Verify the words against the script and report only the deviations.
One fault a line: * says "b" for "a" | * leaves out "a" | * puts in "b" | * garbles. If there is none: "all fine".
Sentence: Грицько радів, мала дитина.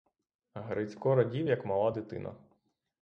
* puts in "як"